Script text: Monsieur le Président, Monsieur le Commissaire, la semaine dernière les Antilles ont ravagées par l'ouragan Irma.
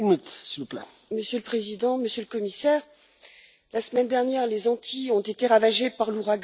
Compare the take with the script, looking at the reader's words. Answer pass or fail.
fail